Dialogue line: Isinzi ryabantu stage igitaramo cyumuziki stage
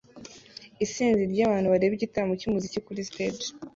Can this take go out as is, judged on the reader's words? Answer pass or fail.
fail